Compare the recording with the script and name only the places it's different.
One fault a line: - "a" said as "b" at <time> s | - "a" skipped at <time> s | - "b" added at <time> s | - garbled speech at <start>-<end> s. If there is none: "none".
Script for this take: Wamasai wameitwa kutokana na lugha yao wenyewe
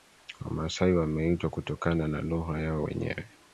none